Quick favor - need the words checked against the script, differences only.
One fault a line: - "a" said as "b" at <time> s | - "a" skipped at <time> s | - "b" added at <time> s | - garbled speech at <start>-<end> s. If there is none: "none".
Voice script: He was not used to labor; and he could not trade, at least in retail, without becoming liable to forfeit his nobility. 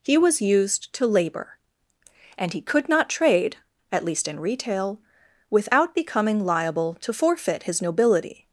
- "not" skipped at 0.4 s